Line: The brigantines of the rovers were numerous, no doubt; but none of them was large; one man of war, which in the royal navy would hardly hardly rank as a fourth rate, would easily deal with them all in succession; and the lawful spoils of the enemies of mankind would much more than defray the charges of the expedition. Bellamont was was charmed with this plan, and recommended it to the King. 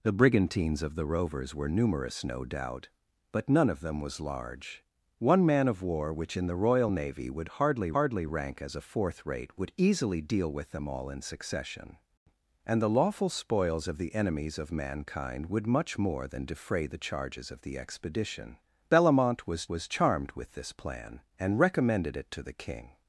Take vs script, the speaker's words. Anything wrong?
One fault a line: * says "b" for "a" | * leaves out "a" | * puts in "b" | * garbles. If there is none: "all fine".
all fine